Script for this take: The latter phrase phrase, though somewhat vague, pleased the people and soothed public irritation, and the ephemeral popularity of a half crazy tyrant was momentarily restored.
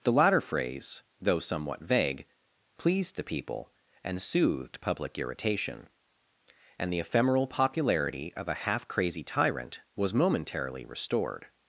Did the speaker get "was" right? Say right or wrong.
right